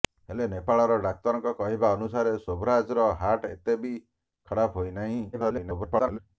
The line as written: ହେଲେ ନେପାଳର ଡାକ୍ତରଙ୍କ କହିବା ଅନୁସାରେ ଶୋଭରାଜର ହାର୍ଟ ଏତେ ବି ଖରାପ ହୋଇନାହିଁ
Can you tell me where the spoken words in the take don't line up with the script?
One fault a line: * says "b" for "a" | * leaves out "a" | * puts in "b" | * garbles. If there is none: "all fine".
* garbles